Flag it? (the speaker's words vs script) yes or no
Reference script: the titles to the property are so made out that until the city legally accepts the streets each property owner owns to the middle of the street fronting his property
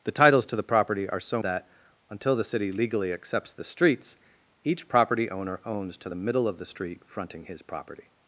yes